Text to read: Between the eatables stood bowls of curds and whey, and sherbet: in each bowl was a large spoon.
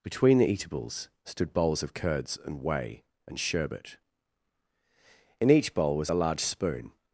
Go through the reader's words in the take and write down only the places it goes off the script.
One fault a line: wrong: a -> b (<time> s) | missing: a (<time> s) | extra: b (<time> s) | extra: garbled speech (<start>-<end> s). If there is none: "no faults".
no faults